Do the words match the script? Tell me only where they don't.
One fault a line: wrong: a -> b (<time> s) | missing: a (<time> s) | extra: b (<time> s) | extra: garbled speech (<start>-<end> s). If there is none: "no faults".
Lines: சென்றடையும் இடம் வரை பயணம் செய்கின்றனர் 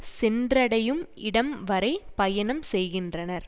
no faults